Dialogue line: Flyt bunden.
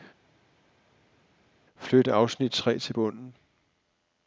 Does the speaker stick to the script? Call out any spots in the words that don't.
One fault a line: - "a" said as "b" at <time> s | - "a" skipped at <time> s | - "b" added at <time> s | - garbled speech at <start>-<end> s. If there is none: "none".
- "afsnit tre til" added at 2.1 s